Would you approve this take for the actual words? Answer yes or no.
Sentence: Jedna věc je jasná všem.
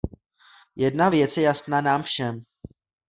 no